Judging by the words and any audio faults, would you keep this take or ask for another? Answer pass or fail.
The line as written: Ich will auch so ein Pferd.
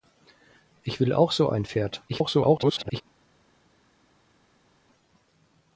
fail